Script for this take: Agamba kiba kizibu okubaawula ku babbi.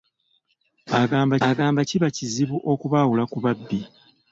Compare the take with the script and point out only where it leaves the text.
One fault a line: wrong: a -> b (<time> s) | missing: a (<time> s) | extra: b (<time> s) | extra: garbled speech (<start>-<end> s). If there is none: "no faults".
extra: agamba (1.5 s)